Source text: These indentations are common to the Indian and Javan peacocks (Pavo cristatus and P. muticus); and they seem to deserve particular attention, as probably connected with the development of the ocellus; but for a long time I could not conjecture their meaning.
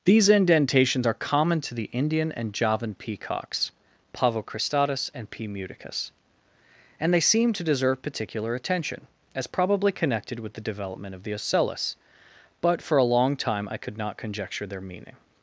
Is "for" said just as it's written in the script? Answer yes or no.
yes